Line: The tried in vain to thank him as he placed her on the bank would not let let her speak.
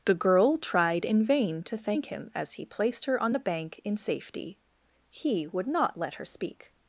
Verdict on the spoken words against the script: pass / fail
fail